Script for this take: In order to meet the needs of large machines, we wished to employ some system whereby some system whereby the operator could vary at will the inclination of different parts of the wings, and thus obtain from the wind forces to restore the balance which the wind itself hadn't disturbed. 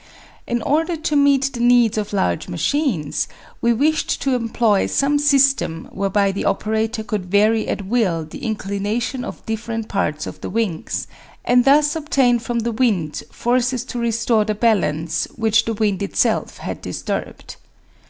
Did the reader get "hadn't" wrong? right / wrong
wrong